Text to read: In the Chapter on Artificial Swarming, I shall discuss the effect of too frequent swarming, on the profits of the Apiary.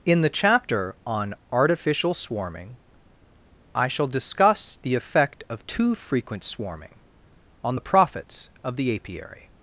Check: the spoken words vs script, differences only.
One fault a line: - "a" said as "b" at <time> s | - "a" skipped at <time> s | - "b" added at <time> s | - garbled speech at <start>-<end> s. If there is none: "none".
none